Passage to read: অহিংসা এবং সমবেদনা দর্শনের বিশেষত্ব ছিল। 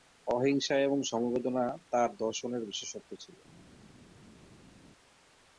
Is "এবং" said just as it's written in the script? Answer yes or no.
yes